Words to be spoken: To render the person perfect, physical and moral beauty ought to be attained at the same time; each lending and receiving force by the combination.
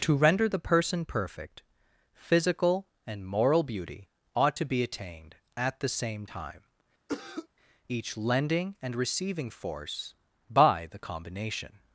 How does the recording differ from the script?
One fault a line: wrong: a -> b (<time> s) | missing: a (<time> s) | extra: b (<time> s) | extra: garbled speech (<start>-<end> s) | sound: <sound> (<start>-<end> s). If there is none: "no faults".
sound: cough (7.1-7.5 s)